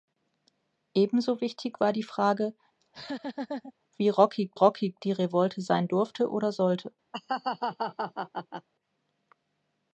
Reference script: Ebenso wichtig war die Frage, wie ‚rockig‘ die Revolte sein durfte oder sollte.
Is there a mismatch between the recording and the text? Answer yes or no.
yes